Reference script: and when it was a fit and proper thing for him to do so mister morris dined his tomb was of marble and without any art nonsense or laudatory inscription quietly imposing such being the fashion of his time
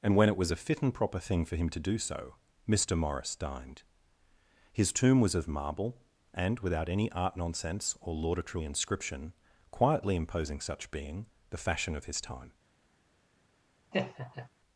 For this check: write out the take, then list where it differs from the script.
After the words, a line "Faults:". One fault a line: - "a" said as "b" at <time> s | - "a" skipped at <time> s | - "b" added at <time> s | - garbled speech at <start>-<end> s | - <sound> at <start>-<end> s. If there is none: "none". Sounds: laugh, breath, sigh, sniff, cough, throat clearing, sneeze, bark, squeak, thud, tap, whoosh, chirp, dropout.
and when it was a fit and proper thing for him to do so mister morris dined his tomb was of marble and without any art nonsense or laudatory inscription quietly imposing such being the fashion of his time
Faults:
- laugh at 13.9-14.5 s